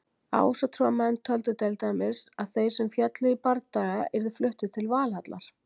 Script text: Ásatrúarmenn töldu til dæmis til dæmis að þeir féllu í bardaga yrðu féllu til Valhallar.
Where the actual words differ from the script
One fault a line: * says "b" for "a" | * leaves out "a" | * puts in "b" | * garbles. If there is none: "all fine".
* leaves out "til dæmis"
* puts in "sem"
* says "fluttir" for "féllu"